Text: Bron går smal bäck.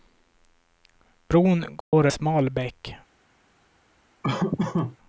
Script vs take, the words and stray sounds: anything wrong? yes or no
yes